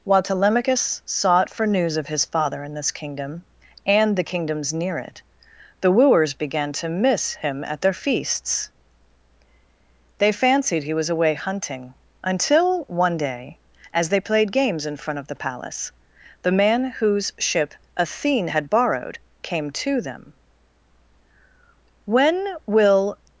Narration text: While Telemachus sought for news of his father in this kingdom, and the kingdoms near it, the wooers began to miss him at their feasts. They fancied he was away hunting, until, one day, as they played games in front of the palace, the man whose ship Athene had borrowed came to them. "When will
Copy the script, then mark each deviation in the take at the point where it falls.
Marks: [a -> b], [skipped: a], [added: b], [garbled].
While Telemachus sought for news of his father in this kingdom, and the kingdoms near it, the wooers began to miss him at their feasts. They fancied he was away hunting, until, one day, as they played games in front of the palace, the man whose ship Athene had borrowed came to them. "When will